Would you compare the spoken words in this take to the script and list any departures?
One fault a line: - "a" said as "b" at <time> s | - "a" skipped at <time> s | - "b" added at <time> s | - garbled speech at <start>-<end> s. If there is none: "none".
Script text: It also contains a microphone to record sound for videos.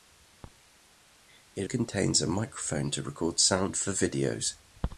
- "also" skipped at 1.7 s